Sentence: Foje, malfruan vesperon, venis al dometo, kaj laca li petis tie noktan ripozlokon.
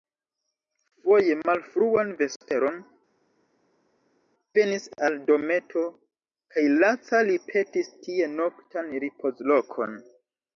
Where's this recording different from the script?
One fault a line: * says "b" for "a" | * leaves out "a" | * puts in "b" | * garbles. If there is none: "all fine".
all fine